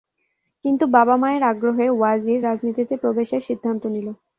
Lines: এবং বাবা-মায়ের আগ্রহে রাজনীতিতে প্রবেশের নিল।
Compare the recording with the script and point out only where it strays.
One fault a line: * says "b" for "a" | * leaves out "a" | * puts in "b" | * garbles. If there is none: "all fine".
* says "কিন্তু" for "এবং"
* puts in "ওয়াজির"
* puts in "সিদ্ধান্ত"